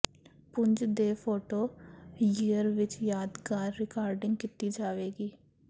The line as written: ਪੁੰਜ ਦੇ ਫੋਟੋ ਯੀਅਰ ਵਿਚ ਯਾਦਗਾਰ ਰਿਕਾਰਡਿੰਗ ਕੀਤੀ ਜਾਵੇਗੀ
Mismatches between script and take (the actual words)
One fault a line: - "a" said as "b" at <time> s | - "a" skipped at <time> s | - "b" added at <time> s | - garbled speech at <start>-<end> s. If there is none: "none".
none